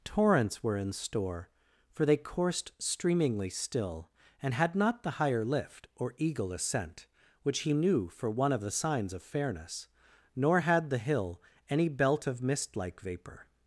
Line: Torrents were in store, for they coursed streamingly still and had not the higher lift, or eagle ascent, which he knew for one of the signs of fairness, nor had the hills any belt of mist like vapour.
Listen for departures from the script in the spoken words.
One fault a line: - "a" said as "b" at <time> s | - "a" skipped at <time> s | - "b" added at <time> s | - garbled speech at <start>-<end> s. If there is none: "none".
- "hills" said as "hill" at 11.0 s